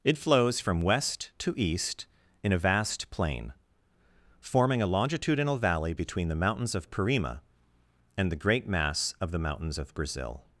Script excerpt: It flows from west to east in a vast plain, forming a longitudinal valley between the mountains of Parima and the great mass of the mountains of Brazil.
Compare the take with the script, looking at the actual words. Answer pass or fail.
pass